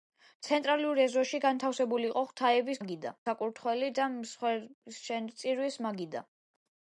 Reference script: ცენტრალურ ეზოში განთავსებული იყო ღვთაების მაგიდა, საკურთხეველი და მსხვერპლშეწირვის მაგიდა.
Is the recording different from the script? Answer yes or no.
no